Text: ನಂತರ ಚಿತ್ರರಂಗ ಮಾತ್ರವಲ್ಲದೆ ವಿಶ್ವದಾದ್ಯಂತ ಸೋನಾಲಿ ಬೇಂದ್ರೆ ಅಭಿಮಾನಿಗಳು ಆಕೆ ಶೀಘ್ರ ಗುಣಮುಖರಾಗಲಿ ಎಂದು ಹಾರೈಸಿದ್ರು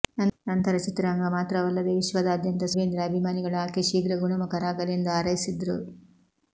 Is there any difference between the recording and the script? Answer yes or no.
yes